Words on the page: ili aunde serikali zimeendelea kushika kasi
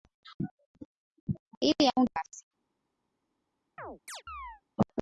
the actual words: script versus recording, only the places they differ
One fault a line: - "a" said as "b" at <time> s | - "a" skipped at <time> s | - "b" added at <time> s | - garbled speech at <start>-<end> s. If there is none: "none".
- "serikali zimeendelea kushika" skipped at 2.1 s